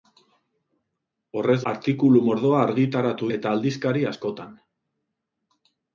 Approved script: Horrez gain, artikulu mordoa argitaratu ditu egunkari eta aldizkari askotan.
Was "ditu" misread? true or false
true